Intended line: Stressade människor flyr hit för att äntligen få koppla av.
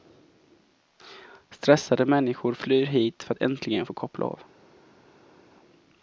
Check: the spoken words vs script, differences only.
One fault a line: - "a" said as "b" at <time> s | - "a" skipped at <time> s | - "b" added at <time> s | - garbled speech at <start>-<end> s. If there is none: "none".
none